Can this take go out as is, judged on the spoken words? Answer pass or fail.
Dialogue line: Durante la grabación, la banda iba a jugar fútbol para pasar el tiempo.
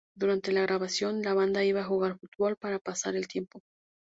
pass